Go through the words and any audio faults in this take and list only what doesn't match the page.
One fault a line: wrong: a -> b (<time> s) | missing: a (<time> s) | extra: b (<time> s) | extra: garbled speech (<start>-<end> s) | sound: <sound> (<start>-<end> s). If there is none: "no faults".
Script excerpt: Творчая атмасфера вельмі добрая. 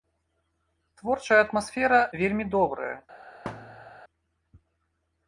sound: thud (3.5-4.0 s)